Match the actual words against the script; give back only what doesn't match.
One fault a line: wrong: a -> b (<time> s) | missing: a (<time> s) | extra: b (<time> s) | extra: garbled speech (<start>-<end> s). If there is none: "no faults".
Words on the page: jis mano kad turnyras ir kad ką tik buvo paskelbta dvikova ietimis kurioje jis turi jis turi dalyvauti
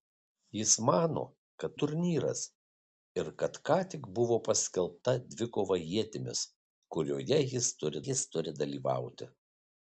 no faults